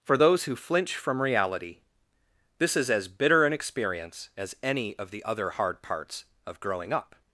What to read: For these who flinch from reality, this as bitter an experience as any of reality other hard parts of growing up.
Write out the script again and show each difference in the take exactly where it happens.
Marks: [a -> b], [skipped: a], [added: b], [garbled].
For [these -> those] who flinch from reality, this [added: is] as bitter an experience as any of [reality -> the] other hard parts of growing up.